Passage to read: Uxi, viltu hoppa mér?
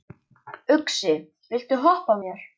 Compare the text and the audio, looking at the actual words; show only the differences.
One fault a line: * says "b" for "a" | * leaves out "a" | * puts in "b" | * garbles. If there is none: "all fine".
all fine